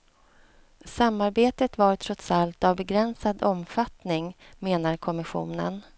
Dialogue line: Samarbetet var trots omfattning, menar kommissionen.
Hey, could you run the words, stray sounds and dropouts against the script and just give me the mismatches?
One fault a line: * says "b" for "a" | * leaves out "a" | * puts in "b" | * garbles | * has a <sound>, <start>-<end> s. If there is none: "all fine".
* puts in "allt av begränsad"